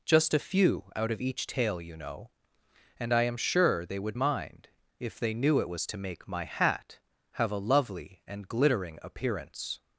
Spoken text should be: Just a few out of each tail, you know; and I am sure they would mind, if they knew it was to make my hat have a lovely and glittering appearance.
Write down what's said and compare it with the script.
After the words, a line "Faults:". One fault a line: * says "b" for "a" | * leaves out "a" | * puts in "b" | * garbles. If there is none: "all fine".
Just a few out of each tail, you know; and I am sure they would mind, if they knew it was to make my hat have a lovely and glittering appearance.
Faults:
all fine